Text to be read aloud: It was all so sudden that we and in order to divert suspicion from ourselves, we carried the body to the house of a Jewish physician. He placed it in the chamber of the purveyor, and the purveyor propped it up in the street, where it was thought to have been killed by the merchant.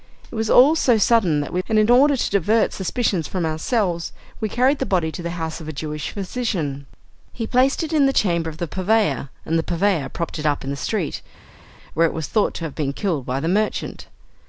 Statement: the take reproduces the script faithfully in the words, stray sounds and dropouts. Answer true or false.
true